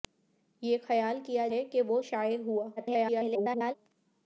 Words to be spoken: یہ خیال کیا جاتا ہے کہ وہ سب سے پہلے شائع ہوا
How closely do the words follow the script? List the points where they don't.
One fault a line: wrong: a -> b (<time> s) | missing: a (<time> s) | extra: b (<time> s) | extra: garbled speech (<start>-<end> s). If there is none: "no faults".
missing: جاتا (1.5 s)
missing: سب سے پہلے (2.0 s)
extra: garbled speech (2.8-3.7 s)